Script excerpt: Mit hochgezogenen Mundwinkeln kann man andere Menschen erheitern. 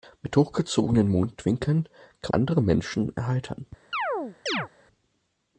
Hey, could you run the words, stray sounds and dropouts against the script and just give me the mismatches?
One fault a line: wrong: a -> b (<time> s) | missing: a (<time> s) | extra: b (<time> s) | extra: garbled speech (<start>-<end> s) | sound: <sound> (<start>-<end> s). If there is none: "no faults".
missing: man (2.3 s)
sound: chirp (3.9-4.7 s)